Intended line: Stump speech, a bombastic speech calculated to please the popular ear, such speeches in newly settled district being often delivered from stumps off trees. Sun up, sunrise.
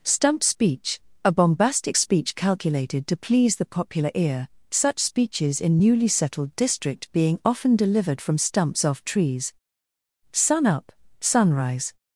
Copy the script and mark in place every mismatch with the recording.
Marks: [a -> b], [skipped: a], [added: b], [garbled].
Stump speech, a bombastic speech calculated to please the popular ear, such speeches in newly settled district being often delivered from stumps off trees. Sun up, sunrise.